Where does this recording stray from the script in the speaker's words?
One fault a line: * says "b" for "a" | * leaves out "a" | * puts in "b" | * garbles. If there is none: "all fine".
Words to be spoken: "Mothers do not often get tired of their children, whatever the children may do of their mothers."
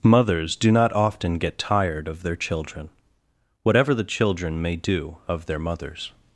all fine